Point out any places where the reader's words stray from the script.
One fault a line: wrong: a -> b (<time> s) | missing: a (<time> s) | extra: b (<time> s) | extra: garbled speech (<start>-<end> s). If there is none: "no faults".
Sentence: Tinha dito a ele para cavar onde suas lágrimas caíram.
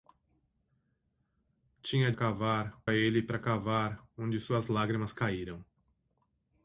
wrong: dito -> cavar (2.1 s)